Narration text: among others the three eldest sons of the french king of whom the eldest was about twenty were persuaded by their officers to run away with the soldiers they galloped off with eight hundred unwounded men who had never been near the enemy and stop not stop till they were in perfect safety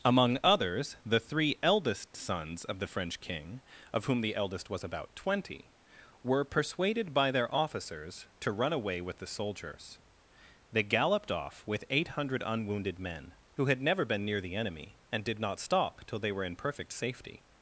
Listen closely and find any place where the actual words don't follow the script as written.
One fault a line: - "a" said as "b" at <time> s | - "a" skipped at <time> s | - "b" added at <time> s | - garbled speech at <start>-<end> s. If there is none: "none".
- "stop" said as "did" at 15.2 s